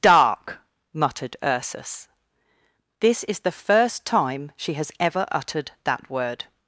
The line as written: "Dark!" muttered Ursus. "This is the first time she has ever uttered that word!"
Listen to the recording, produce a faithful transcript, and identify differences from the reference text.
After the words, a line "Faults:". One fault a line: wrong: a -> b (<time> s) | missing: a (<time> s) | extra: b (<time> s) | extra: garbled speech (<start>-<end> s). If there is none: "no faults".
"Dark!" muttered Ursus. "This is the first time she has ever uttered that word!"
Faults:
no faults